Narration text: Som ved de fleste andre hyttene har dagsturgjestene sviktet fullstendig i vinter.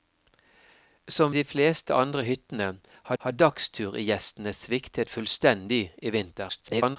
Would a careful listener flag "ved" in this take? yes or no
yes